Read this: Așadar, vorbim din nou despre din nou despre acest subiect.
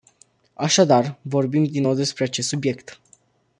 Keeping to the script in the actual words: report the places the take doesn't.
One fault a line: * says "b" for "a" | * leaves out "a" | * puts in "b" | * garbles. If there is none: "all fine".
* leaves out "din nou despre"